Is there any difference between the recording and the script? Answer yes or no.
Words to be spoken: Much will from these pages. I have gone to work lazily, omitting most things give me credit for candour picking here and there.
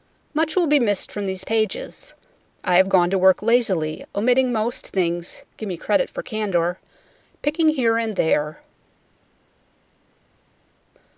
yes